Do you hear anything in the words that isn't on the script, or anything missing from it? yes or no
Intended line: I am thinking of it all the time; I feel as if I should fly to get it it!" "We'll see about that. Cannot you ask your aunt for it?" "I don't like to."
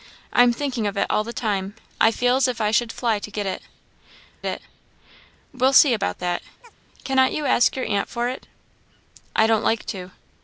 no